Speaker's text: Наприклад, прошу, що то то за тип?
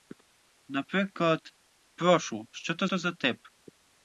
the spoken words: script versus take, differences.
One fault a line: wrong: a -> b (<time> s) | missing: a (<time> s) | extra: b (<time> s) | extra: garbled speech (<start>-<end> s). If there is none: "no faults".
no faults